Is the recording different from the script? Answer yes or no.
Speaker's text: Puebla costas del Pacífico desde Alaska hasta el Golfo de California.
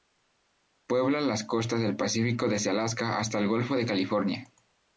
yes